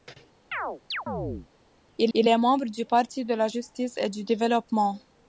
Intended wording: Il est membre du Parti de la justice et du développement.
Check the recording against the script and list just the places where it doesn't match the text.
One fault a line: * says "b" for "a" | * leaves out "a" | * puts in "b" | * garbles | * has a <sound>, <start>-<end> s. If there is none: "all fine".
* has a chirp, 0.5-1.5 s
* puts in "il"